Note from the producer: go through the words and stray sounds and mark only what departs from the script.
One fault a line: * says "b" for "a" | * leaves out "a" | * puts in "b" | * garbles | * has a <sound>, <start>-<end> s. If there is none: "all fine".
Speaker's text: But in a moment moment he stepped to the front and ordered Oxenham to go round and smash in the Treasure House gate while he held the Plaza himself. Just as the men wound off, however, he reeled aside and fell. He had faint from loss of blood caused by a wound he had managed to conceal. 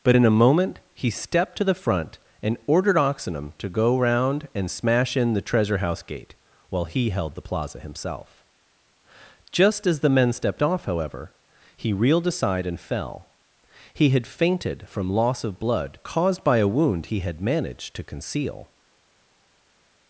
* leaves out "moment"
* says "stepped" for "wound"
* says "fainted" for "faint"